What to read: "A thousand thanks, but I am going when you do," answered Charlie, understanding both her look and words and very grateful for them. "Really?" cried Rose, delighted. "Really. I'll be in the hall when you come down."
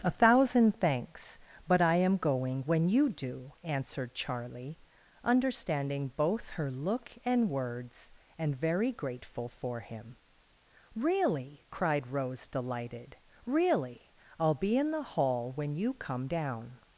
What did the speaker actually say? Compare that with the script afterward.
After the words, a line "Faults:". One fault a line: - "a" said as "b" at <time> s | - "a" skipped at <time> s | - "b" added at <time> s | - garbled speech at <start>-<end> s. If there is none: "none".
"A thousand thanks, but I am going when you do," answered Charlie, understanding both her look and words and very grateful for him. "Really?" cried Rose, delighted. "Really. I'll be in the hall when you come down."
Faults:
- "them" said as "him" at 9.8 s